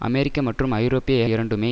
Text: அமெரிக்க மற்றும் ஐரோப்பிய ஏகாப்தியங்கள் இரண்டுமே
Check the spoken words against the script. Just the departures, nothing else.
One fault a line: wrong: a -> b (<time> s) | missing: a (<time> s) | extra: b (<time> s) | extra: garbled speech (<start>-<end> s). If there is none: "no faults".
missing: ஏகாப்தியங்கள் (1.2 s)